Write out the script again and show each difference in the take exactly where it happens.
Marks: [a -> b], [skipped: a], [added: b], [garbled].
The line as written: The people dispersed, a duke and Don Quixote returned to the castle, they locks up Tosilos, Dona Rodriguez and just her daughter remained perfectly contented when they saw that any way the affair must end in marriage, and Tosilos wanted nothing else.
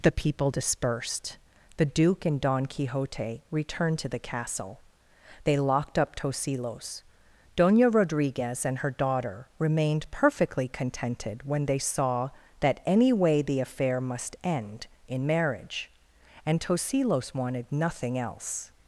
The people dispersed, [a -> the] duke and Don Quixote returned to the castle, they [locks -> locked] up Tosilos, Dona Rodriguez and [skipped: just] her daughter remained perfectly contented when they saw that any way the affair must end in marriage, and Tosilos wanted nothing else.